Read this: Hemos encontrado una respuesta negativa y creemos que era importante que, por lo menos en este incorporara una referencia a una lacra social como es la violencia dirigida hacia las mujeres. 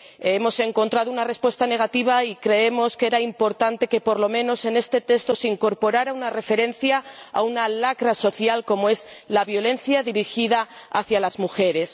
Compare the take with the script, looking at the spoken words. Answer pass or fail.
fail